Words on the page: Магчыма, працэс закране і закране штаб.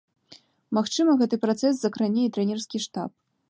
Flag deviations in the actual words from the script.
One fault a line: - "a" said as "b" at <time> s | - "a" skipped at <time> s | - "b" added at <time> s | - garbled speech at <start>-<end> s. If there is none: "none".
- "гэты" added at 1.2 s
- "закране" said as "трэнерскі" at 2.4 s